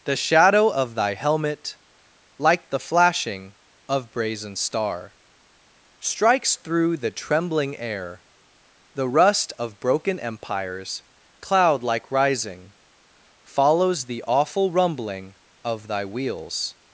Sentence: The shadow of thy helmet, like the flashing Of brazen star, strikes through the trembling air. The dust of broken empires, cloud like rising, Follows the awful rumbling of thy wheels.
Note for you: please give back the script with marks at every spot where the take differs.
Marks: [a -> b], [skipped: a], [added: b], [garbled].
The shadow of thy helmet, like the flashing Of brazen star, strikes through the trembling air. The [dust -> rust] of broken empires, cloud like rising, Follows the awful rumbling of thy wheels.